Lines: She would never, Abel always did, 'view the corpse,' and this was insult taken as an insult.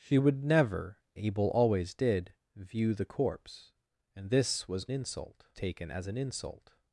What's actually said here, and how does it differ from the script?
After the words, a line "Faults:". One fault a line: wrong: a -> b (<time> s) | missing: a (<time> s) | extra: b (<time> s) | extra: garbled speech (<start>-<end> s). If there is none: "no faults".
She would never, Abel always did, 'view the corpse,' and this was insult taken as an insult.
Faults:
no faults